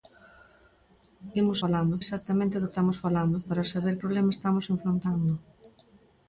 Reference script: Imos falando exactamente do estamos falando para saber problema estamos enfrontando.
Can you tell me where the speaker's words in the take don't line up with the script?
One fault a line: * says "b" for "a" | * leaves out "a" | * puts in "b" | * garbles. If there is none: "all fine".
all fine